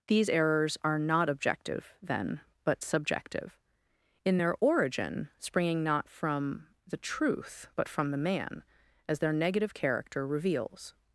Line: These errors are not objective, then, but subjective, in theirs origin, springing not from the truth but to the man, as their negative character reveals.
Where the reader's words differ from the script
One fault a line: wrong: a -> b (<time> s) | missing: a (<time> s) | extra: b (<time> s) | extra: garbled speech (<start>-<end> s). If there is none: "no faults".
wrong: theirs -> their (4.4 s)
wrong: to -> from (7.9 s)